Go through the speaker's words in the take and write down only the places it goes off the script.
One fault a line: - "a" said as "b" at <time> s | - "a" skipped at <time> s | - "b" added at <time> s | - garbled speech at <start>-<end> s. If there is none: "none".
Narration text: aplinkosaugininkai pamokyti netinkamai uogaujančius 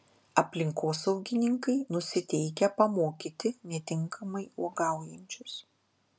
- "nusiteikę" added at 1.9 s